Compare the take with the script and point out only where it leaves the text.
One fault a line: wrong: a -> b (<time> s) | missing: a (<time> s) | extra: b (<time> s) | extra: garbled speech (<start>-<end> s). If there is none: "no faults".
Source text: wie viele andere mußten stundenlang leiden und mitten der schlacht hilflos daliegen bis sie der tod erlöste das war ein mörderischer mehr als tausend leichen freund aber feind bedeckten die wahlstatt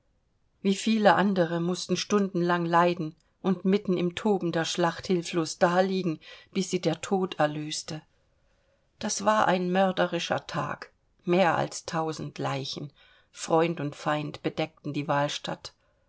extra: im toben (4.0 s)
extra: tag (10.5 s)
wrong: aber -> und (13.8 s)